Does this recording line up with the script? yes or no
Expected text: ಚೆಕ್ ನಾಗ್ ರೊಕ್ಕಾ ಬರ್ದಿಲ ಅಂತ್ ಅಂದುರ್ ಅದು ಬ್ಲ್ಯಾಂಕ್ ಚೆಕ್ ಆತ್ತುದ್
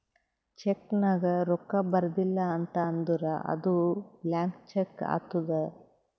yes